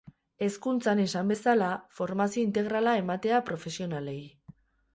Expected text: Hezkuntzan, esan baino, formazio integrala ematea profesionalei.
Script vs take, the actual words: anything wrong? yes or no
yes